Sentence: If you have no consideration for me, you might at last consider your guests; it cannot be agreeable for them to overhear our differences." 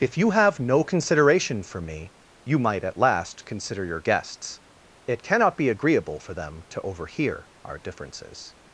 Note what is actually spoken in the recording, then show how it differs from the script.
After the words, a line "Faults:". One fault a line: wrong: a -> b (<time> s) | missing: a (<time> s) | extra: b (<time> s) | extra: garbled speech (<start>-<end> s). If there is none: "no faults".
If you have no consideration for me, you might at last consider your guests; it cannot be agreeable for them to overhear our differences."
Faults:
no faults